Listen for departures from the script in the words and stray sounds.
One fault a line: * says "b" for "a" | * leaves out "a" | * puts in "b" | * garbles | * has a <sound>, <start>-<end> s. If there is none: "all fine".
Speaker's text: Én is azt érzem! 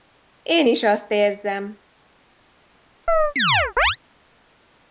* has a chirp, 3.1-4.0 s